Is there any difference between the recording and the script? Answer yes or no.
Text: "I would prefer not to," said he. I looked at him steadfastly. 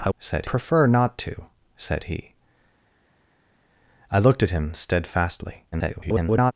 yes